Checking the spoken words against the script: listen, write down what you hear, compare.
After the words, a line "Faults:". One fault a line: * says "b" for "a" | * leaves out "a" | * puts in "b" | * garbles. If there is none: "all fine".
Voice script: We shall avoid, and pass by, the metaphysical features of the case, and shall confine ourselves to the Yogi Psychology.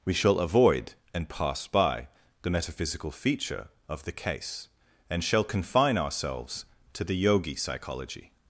We shall avoid, and pass by, the metaphysical feature of the case, and shall confine ourselves to the Yogi Psychology.
Faults:
* says "feature" for "features"